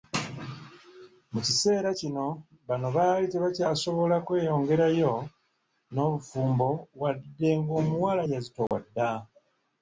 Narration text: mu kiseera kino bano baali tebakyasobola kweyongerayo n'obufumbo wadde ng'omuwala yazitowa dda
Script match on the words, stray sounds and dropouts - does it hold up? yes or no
no